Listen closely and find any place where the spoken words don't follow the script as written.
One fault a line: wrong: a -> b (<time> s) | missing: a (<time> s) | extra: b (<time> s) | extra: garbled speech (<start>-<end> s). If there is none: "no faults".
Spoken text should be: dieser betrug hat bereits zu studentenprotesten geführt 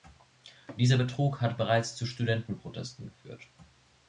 no faults